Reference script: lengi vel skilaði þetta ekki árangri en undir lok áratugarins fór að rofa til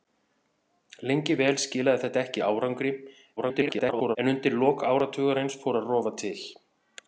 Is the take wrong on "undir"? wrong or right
right